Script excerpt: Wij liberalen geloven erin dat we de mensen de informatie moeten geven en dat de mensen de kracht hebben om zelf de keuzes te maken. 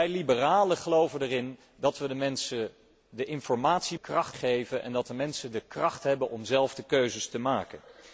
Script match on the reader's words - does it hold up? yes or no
no